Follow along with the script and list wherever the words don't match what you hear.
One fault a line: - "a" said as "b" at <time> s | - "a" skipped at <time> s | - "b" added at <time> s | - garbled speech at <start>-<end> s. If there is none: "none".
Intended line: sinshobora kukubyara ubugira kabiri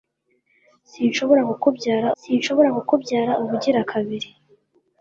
- "sinshobora kukubyara" added at 2.2 s